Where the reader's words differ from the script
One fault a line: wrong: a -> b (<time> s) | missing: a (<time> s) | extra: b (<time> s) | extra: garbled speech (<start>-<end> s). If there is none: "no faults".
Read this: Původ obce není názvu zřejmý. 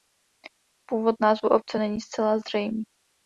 extra: názvu (1.2 s)
wrong: názvu -> zcela (2.0 s)